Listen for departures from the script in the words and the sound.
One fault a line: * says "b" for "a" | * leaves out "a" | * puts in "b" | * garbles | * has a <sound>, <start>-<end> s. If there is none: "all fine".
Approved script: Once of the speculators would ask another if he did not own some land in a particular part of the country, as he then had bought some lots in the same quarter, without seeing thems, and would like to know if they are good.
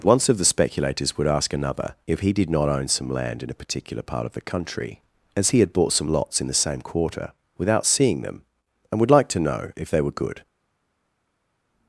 * leaves out "then"
* says "them" for "thems"
* says "were" for "are"